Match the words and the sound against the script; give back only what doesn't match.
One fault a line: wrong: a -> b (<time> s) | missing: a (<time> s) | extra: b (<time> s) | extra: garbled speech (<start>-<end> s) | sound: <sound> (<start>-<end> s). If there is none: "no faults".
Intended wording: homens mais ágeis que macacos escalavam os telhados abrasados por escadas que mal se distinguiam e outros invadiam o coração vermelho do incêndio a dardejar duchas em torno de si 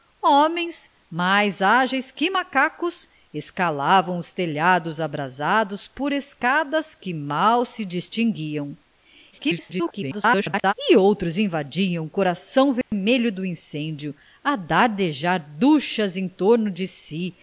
extra: garbled speech (9.3-10.7 s)
sound: dropout (12.8-12.9 s)